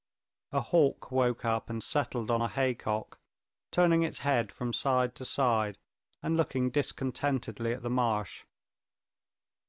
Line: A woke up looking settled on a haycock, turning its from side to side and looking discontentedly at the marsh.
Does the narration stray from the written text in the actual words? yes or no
yes